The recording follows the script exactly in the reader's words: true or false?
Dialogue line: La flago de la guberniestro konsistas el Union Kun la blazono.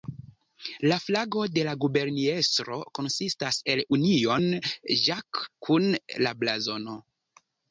false